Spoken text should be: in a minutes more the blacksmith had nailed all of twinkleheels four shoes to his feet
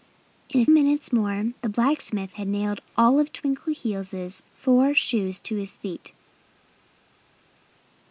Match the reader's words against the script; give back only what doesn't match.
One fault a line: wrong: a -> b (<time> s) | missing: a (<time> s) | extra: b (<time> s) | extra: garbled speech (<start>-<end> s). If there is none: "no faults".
no faults